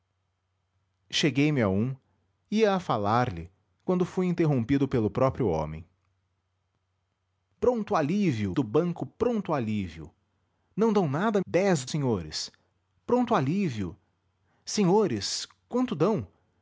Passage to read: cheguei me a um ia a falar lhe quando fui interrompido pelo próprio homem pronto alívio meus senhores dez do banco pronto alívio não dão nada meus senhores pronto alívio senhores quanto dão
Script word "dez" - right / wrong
wrong